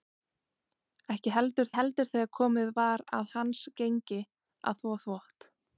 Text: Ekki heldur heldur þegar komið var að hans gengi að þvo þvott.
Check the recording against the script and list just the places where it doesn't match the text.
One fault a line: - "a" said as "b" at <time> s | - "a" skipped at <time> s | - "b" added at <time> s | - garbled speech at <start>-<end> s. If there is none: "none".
none